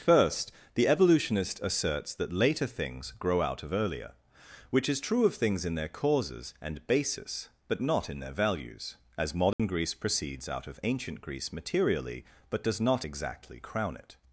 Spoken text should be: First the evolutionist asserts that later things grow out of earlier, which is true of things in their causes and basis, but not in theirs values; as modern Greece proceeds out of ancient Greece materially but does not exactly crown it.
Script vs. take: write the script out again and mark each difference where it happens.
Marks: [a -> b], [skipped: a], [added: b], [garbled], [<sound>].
First the evolutionist asserts that later things grow out of earlier, which is true of things in their causes and basis, but not in [theirs -> their] values; as modern [dropout] Greece proceeds out of ancient Greece materially but does not exactly crown it.